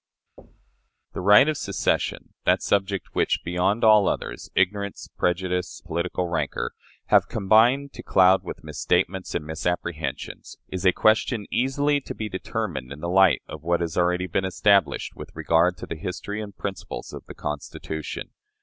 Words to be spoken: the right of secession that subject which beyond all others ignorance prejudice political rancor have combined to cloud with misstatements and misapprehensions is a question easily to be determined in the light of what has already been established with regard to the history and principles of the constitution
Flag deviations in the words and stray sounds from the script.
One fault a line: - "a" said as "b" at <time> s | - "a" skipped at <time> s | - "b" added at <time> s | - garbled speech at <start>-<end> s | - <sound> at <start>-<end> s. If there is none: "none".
- thud at 0.4-0.9 s